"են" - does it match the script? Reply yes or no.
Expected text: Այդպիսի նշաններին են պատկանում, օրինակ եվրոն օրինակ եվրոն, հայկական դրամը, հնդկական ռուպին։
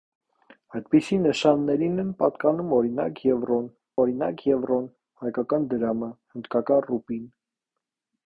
yes